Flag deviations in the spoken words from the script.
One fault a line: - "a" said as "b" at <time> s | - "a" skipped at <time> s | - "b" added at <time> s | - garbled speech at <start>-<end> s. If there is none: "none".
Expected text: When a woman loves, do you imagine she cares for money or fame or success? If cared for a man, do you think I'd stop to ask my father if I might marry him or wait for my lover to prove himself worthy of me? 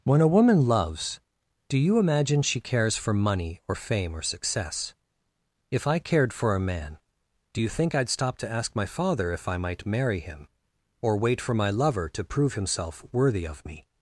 - "I" added at 5.8 s